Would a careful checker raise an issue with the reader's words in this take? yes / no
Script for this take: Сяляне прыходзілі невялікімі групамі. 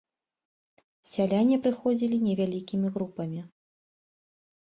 no